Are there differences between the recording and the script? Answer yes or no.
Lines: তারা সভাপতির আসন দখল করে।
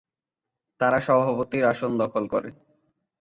no